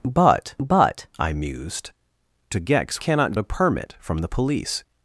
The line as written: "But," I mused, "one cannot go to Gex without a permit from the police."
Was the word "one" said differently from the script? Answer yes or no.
yes